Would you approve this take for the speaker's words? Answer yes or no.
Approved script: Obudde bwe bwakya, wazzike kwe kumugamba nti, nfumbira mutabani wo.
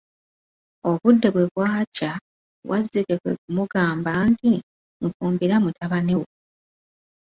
yes